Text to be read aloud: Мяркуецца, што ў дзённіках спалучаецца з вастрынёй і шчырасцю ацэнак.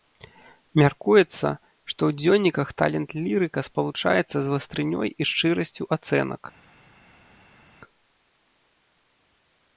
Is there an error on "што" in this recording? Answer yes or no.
no